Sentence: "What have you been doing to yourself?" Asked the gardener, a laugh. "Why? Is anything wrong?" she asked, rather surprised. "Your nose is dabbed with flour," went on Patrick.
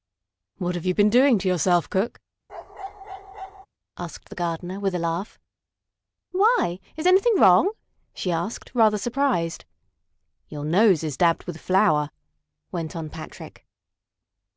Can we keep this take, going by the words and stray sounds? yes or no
no